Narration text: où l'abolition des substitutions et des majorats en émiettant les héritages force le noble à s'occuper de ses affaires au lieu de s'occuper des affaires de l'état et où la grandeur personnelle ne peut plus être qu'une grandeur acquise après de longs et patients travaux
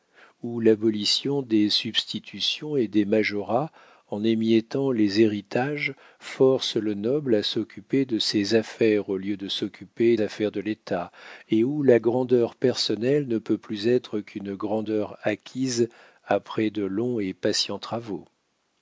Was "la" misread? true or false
false